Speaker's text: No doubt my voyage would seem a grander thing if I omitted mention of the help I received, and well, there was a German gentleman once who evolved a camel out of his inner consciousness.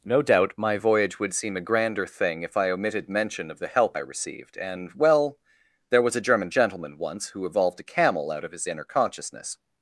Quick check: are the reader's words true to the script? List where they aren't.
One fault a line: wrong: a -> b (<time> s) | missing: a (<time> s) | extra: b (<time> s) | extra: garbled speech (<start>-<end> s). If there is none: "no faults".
no faults